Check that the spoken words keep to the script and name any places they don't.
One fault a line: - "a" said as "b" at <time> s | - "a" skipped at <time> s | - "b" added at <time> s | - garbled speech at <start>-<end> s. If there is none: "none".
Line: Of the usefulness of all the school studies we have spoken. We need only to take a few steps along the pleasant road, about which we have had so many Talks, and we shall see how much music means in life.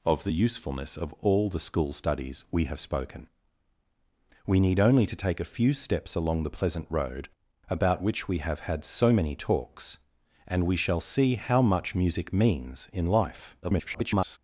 - garbled speech at 13.6-14.4 s